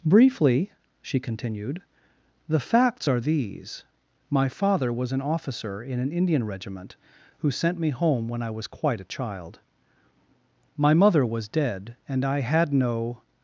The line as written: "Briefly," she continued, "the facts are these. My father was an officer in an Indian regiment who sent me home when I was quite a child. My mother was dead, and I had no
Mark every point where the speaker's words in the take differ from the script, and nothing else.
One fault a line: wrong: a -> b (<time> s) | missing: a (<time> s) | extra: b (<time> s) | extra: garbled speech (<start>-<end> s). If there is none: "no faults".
no faults